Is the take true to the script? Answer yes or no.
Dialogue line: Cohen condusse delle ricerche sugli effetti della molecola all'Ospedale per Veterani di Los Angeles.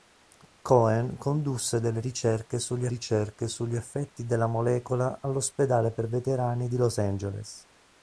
no